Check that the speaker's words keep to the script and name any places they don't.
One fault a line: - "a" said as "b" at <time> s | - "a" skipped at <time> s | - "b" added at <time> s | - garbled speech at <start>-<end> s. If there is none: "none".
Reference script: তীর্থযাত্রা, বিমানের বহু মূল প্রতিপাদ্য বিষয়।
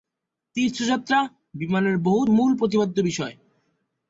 none